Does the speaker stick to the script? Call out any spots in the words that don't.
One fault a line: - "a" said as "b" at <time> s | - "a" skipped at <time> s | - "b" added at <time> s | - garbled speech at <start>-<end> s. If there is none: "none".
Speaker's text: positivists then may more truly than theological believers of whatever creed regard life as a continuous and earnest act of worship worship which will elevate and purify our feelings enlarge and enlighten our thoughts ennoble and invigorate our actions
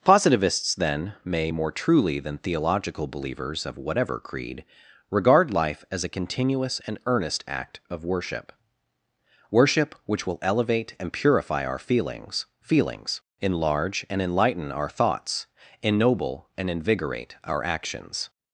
- "feelings" added at 12.6 s